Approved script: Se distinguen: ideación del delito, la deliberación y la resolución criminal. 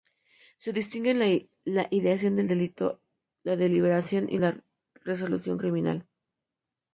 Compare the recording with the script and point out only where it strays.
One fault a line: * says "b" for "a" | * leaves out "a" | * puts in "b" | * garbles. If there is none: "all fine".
* puts in "la"